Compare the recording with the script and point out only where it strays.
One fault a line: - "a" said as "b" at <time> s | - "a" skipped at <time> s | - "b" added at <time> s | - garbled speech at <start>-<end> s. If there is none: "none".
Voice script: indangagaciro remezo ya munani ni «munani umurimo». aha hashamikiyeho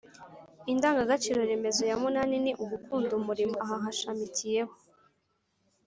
- "munani" said as "ugukunda" at 2.6 s